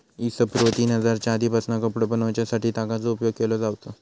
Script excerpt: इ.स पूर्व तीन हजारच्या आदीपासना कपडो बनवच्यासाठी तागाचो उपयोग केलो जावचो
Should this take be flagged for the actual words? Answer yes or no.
no